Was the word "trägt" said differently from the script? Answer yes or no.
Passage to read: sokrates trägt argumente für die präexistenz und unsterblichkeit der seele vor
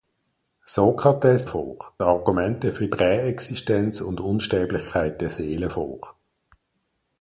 yes